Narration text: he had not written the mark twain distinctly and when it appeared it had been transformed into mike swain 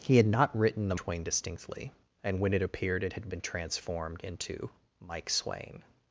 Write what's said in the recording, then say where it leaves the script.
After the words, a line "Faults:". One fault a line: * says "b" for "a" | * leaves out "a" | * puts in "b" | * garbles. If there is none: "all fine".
he had not written the twain distinctly and when it appeared it had been transformed into mike swain
Faults:
* leaves out "mark"